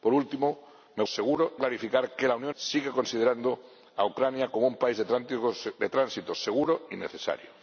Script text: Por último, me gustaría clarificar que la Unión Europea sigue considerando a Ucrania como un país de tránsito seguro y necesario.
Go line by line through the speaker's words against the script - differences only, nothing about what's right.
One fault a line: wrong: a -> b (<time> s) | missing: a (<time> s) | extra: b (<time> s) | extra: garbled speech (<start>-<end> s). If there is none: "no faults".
wrong: gustaría -> seguro (1.0 s)
missing: Europea (2.5 s)